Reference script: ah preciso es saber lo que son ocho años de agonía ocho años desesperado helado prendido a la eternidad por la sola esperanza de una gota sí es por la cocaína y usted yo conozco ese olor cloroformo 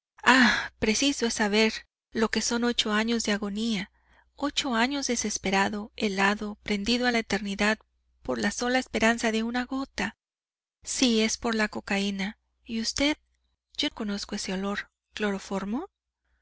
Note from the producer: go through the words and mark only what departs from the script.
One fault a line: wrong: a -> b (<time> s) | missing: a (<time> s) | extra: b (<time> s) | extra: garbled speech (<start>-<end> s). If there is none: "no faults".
no faults